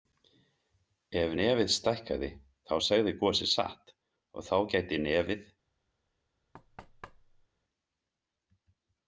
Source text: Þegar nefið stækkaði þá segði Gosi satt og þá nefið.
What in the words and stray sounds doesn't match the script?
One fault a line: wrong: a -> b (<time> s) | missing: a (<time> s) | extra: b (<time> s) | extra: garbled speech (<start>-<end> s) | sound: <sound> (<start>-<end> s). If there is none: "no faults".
wrong: Þegar -> Ef (1.2 s)
extra: gæti (4.7 s)
sound: thud (6.5-7.5 s)